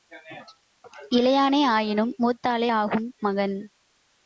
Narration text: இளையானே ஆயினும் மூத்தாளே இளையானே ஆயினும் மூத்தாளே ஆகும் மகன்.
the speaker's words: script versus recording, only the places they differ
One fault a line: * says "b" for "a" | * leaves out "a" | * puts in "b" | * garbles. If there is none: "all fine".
* leaves out "இளையானே ஆயினும் மூத்தாளே"